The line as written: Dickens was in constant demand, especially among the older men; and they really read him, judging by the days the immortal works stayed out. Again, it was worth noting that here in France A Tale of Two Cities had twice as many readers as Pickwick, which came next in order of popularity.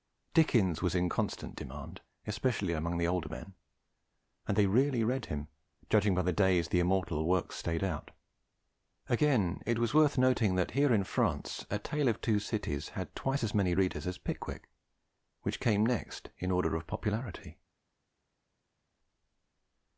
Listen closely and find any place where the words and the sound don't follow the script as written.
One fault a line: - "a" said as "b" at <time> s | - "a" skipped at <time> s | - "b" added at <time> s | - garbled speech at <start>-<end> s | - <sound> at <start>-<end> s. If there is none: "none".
none